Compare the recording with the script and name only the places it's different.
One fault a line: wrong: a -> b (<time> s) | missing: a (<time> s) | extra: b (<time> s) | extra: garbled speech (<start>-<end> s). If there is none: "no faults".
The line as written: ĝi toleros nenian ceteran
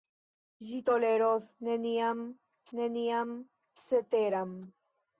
extra: nenian (2.8 s)